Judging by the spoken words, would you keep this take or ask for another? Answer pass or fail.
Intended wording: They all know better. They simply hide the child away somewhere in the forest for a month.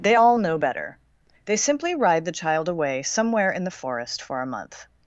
fail